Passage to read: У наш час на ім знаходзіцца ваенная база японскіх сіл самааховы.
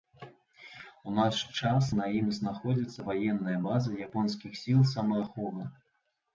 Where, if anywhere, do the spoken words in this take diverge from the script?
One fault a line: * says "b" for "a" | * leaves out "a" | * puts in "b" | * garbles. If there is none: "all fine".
all fine